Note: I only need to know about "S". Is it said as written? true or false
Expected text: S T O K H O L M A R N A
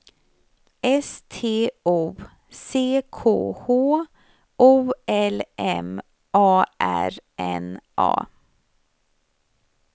true